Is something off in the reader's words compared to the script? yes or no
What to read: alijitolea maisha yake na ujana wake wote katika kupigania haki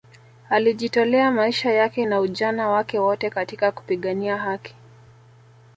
no